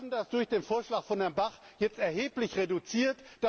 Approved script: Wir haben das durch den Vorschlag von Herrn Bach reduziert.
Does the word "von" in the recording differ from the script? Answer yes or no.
no